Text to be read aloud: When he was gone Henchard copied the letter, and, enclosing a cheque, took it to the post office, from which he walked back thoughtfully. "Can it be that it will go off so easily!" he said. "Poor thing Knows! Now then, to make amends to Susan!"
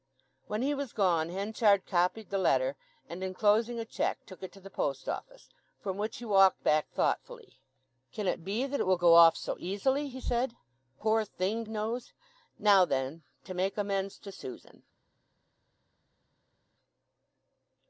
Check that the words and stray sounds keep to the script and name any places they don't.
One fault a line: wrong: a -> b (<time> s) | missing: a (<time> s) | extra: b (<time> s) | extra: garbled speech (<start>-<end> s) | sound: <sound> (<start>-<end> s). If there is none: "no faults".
no faults